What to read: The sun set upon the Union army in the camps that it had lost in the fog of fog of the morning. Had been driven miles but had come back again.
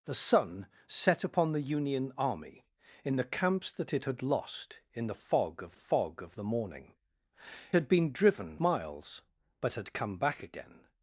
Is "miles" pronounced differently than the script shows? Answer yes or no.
no